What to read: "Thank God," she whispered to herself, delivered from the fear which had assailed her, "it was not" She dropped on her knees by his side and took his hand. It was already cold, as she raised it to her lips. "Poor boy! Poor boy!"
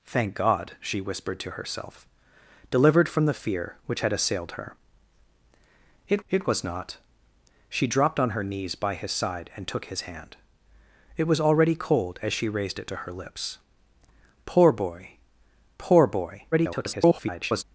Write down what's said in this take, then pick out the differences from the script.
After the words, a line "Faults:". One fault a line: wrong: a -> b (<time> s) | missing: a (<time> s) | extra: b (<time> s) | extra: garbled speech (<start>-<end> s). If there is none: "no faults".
"Thank God," she whispered to herself, delivered from the fear which had assailed her, "it it was not" She dropped on her knees by his side and took his hand. It was already cold, as she raised it to her lips. "Poor boy! Poor boy!" [garbled]
Faults:
extra: it (6.3 s)
extra: garbled speech (16.5-17.6 s)